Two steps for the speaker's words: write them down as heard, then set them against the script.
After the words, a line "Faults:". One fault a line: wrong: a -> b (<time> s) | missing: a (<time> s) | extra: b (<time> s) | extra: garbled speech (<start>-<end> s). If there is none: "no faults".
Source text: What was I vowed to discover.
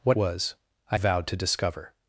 What was I vowed to discover.
Faults:
no faults